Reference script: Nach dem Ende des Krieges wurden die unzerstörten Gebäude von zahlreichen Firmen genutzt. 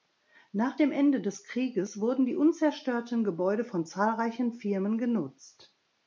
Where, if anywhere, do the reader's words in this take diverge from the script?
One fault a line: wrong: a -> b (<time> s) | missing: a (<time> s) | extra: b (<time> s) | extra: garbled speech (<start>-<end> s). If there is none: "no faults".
no faults